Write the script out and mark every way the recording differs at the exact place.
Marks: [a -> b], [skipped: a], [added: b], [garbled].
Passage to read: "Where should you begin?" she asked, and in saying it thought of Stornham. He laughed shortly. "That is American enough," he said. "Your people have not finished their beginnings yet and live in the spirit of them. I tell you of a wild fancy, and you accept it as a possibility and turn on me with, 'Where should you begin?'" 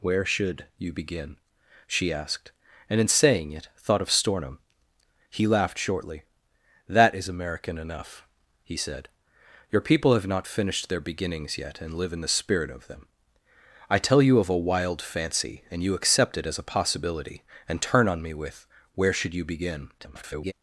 "Where should you begin?" she asked, and in saying it thought of Stornham. He laughed shortly. "That is American enough," he said. "Your people have not finished their beginnings yet and live in the spirit of them. I tell you of a wild fancy, and you accept it as a possibility and turn on me with, 'Where should you begin?'" [garbled]